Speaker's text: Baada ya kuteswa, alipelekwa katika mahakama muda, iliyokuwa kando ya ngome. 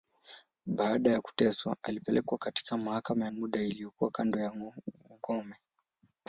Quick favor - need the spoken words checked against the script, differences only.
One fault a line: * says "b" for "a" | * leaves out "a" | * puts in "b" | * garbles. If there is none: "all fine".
all fine